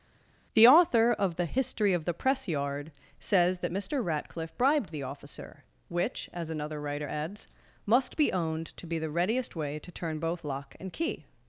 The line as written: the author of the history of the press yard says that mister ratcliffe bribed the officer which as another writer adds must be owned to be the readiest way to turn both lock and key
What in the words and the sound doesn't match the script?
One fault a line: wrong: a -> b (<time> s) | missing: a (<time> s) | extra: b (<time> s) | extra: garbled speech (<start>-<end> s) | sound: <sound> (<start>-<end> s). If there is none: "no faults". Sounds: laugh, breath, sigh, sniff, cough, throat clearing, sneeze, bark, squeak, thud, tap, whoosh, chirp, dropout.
no faults